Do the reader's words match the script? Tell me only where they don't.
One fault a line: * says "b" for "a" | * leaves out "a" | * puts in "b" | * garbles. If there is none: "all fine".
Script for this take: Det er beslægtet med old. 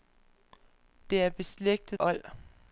* leaves out "med"